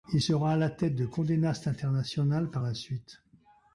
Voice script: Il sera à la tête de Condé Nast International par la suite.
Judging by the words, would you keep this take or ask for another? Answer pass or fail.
pass